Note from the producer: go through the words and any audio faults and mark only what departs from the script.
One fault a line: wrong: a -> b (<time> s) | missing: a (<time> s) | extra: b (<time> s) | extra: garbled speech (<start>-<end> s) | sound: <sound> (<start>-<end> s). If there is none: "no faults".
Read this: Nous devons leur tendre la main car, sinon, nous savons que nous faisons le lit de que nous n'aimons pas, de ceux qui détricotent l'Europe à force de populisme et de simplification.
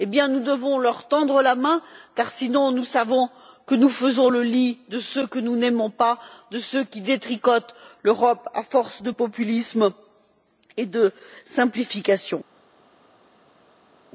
extra: ceux (5.0 s)